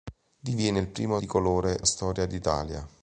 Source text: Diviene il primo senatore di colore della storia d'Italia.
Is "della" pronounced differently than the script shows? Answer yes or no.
yes